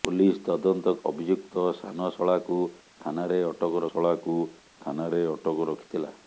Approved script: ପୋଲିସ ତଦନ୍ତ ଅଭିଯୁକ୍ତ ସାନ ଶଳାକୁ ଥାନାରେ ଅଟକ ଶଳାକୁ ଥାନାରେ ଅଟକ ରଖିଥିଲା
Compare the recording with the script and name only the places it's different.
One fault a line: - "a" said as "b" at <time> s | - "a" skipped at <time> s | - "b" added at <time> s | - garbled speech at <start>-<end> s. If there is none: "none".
none